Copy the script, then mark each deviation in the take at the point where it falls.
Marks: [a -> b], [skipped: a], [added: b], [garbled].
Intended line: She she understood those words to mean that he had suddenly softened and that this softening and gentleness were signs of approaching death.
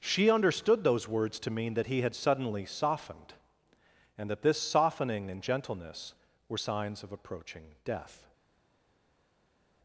She [skipped: she] understood those words to mean that he had suddenly softened and that this softening and gentleness were signs of approaching death.